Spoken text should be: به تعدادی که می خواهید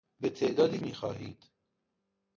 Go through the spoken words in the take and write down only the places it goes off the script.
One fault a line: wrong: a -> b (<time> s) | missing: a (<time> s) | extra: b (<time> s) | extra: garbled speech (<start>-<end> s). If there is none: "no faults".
missing: که (0.8 s)